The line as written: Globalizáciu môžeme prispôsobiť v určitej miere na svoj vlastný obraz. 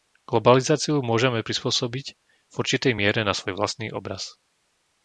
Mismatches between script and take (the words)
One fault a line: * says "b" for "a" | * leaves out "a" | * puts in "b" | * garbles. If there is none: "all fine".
all fine